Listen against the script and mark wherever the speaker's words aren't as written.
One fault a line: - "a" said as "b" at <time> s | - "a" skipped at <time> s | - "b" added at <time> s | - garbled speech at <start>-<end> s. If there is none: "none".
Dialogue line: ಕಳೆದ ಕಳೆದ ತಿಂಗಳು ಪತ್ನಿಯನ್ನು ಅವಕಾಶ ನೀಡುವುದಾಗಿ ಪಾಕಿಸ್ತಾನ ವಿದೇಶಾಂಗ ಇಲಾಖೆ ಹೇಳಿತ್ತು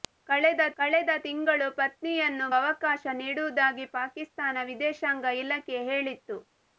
none